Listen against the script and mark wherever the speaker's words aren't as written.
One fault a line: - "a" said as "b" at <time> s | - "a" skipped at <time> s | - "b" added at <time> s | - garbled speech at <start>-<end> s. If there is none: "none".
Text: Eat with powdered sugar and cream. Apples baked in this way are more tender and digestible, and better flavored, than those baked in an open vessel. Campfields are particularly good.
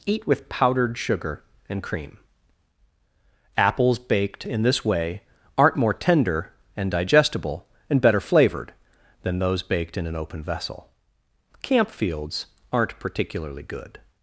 - "are" said as "aren't" at 5.6 s
- "are" said as "aren't" at 12.7 s